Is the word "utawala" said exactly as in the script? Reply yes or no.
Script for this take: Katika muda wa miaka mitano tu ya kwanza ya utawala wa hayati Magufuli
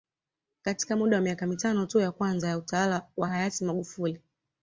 yes